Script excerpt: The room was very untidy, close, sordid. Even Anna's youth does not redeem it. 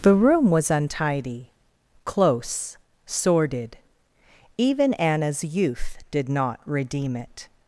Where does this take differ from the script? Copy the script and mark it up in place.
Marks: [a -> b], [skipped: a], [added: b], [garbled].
The room was [skipped: very] untidy, close, sordid. Even Anna's youth [does -> did] not redeem it.